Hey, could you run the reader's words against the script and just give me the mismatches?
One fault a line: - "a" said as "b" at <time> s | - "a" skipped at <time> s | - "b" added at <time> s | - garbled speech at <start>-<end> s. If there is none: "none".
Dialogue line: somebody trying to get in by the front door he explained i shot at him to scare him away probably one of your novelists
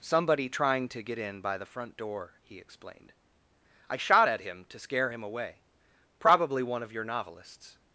none